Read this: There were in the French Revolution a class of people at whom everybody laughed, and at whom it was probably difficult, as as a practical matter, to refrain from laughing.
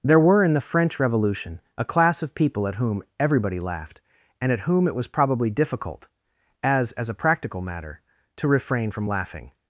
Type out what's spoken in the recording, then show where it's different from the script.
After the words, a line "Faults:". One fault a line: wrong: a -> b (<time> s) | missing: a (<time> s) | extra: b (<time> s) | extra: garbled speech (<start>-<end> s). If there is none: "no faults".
There were in the French Revolution a class of people at whom everybody laughed, and at whom it was probably difficult, as as a practical matter, to refrain from laughing.
Faults:
no faults